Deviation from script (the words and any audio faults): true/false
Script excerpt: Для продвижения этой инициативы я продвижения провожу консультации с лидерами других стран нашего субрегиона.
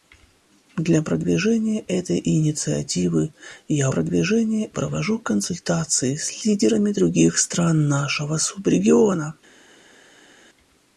false